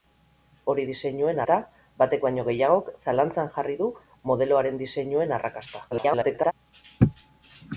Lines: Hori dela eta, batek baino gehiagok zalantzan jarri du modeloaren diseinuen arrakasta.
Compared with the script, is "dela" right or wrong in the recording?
wrong